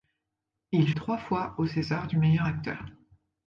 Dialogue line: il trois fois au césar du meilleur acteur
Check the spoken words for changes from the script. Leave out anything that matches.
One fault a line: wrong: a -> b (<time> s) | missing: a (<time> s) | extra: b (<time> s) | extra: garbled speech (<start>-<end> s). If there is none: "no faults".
no faults